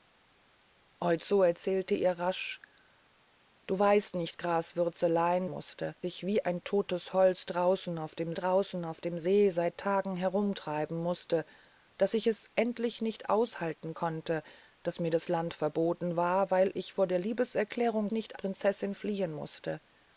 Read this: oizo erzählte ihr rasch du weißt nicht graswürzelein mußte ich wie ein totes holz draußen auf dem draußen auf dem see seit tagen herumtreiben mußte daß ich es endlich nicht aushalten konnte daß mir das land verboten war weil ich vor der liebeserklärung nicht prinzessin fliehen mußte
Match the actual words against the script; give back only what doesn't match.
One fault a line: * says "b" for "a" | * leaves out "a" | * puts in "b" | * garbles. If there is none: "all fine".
all fine